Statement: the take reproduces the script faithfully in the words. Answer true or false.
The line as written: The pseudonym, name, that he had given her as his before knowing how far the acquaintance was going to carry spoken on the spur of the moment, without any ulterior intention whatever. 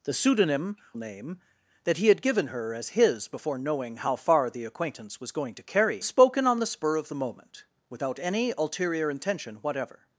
true